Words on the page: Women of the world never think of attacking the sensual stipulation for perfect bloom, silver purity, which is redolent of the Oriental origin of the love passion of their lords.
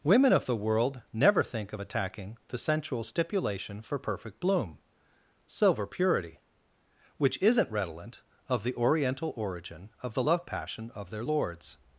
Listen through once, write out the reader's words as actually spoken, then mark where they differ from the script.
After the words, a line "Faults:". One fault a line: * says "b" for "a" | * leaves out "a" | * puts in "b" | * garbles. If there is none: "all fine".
Women of the world never think of attacking the sensual stipulation for perfect bloom, silver purity, which isn't redolent of the Oriental origin of the love passion of their lords.
Faults:
* says "isn't" for "is"